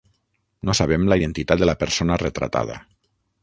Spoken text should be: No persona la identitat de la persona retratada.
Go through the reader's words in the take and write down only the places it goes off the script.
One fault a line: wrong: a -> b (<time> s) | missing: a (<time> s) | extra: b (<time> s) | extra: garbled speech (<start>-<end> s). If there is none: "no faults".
wrong: persona -> sabem (0.8 s)